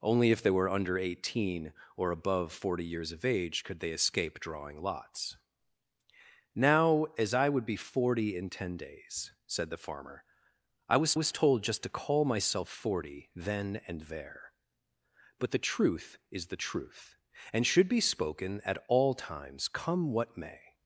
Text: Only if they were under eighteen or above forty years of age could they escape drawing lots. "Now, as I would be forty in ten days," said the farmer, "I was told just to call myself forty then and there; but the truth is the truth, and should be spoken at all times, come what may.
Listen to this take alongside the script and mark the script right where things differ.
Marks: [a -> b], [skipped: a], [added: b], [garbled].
Only if they were under eighteen or above forty years of age could they escape drawing lots. "Now, as I would be forty in ten days," said the farmer, "I was [added: was] told just to call myself forty then and there; but the truth is the truth, and should be spoken at all times, come what may.